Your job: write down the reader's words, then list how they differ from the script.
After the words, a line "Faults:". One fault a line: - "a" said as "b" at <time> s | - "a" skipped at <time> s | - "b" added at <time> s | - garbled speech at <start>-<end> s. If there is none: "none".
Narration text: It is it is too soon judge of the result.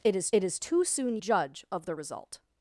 It is it is too soon judge of the result.
Faults:
none